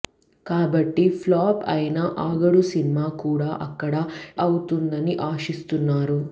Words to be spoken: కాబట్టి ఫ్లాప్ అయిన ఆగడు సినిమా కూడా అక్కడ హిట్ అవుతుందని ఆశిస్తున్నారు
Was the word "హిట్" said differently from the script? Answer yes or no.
yes